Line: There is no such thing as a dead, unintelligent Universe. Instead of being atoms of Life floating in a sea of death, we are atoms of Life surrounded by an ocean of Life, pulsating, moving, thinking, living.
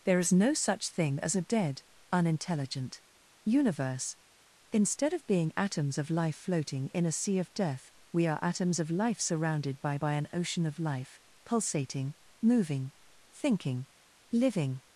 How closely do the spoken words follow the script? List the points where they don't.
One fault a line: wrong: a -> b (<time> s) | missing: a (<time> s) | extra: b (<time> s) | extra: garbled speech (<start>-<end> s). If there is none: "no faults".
extra: by (10.0 s)